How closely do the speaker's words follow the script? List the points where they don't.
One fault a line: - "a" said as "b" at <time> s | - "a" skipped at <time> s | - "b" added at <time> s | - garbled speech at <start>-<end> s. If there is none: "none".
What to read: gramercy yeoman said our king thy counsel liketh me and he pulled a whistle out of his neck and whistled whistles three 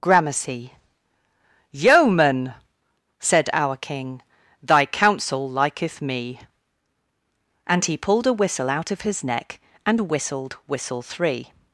- "whistles" said as "whistle" at 10.7 s